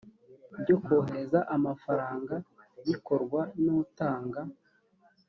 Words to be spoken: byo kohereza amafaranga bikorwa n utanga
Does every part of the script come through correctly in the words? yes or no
yes